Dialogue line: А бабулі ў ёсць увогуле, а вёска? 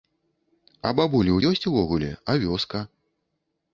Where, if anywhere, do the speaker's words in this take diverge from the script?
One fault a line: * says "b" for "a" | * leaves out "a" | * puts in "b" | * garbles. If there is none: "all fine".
all fine